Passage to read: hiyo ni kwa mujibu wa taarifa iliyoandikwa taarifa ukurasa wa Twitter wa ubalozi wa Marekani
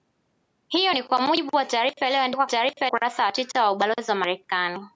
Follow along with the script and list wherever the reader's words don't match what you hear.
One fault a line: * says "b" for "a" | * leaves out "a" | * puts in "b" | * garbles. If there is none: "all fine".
all fine